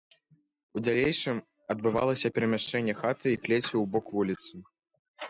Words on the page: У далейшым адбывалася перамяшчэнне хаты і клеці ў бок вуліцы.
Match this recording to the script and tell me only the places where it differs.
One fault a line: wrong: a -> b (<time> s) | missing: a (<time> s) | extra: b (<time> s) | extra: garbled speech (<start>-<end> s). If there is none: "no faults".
no faults